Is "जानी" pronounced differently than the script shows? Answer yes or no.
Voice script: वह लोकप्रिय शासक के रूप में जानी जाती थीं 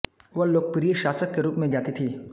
yes